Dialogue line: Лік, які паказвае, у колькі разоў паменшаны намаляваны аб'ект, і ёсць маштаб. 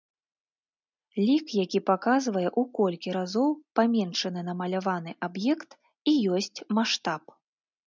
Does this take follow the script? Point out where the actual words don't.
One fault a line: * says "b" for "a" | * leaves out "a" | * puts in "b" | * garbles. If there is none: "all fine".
all fine